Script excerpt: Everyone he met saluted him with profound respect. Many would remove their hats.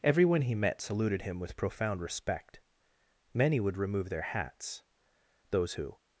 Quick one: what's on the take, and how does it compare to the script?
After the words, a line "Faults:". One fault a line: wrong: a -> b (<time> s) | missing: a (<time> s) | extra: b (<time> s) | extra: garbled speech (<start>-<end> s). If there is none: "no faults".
Everyone he met saluted him with profound respect. Many would remove their hats. Those who
Faults:
extra: Those who (5.5 s)